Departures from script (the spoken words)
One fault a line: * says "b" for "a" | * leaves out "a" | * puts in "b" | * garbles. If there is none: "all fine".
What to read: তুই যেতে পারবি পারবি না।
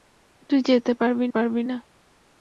all fine